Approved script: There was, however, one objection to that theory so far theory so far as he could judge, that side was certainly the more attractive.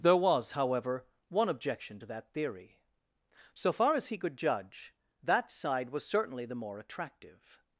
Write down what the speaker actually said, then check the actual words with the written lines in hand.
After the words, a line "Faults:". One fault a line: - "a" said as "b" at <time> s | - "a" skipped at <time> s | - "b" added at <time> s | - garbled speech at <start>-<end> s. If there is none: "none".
There was, however, one objection to that theory so far as he could judge, that side was certainly the more attractive.
Faults:
- "theory so far" skipped at 4.0 s